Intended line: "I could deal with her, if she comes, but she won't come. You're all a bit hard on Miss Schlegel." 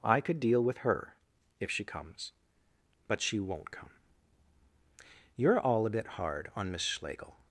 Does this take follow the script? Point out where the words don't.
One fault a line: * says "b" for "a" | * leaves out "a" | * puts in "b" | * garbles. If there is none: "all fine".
all fine